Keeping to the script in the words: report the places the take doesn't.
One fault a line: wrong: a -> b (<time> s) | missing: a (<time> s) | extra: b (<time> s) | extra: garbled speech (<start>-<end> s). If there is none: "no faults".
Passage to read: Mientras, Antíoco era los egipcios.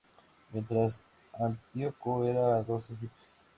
no faults